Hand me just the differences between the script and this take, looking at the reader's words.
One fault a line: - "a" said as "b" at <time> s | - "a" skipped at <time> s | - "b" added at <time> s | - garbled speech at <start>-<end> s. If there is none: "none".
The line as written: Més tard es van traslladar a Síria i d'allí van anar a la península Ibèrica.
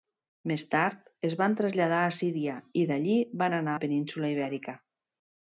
- "a" skipped at 3.8 s